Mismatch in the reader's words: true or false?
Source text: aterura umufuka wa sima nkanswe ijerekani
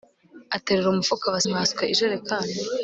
true